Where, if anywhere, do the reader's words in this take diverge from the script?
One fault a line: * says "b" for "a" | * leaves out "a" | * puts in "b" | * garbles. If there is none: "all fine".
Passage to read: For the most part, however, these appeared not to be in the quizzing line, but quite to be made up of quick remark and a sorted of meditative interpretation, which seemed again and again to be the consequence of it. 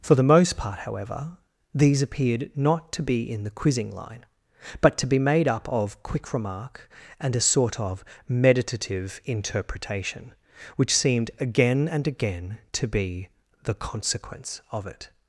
* leaves out "quite"
* says "sort" for "sorted"